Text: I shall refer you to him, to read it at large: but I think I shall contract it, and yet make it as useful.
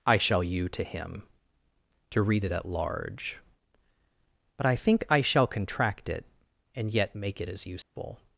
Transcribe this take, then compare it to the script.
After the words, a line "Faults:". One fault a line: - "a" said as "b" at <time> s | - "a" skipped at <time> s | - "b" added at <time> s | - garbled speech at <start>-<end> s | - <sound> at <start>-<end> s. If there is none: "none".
I shall you to him, to read it at large: but I think I shall contract it, and yet make it as useful.
Faults:
- "refer" skipped at 0.4 s
- dropout at 7.8-8.0 s